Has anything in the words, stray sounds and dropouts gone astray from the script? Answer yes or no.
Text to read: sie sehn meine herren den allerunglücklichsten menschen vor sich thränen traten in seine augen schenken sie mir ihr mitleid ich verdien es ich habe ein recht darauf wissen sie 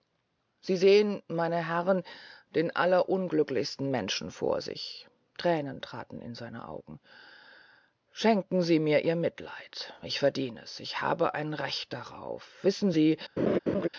yes